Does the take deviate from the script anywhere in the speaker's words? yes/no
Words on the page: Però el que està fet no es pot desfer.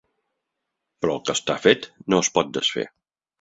no